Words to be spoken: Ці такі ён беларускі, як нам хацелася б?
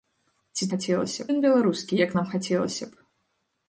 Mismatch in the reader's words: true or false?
true